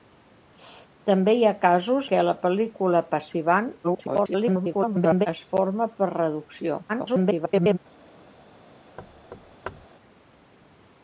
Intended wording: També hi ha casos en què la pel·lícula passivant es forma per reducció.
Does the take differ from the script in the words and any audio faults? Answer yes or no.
yes